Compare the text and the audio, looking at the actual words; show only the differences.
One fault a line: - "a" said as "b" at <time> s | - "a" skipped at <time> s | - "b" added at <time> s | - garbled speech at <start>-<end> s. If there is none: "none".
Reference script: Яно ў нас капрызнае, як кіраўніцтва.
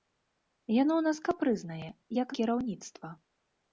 none